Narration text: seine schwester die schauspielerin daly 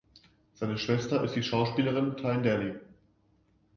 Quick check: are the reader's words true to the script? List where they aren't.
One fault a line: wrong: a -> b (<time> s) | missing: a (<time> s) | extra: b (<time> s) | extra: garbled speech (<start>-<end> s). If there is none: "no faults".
extra: ist (1.2 s)
extra: tyne (2.2 s)